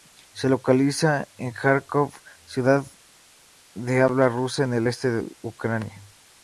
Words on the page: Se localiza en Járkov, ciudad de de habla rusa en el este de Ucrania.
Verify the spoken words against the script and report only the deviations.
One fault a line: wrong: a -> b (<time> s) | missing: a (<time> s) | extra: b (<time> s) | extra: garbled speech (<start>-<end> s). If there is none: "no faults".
missing: de (4.0 s)